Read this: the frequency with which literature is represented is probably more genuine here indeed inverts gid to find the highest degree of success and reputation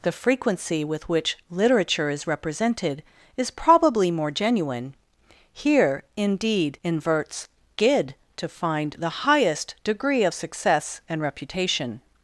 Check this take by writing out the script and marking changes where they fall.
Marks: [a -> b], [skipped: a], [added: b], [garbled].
the frequency with which literature is represented is probably more genuine here indeed inverts gid to find the highest degree of success and reputation